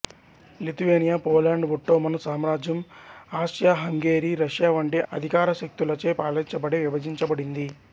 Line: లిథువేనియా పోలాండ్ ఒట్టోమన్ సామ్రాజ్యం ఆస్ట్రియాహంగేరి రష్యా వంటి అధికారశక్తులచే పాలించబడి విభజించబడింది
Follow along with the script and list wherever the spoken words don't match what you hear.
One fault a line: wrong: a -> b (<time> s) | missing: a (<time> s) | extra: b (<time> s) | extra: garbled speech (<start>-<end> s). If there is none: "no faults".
no faults